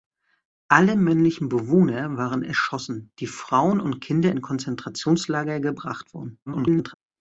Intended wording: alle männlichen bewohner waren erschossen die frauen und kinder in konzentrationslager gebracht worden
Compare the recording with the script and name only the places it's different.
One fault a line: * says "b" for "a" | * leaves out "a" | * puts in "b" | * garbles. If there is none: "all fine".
* garbles